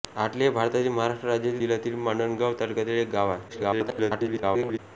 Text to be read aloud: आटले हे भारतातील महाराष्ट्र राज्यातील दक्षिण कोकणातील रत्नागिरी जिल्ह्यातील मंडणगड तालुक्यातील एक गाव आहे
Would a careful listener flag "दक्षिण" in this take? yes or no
yes